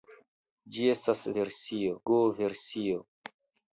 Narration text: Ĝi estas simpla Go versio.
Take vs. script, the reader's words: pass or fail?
fail